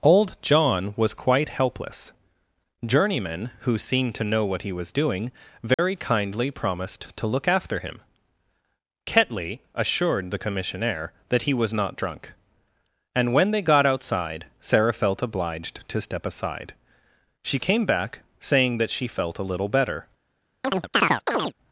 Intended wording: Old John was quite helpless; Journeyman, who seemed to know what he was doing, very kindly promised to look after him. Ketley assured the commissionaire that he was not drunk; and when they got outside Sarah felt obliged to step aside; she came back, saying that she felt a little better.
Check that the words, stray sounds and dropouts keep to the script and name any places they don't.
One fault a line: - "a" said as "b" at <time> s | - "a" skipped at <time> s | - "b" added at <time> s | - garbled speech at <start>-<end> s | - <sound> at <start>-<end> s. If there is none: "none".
- dropout at 5.7-5.8 s
- chirp at 20.6-21.5 s